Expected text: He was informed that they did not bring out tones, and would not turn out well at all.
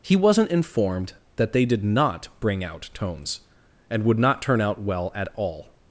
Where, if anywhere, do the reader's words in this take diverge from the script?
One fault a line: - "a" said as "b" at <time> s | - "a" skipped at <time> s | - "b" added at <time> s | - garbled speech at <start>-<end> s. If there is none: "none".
- "was" said as "wasn't" at 0.1 s